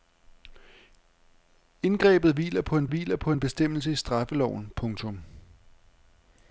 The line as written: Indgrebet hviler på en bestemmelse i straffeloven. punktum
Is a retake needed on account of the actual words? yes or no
yes